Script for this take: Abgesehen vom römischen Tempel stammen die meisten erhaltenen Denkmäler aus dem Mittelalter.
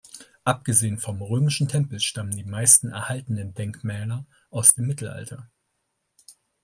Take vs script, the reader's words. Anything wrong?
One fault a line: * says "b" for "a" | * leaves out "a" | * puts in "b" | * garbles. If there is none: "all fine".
all fine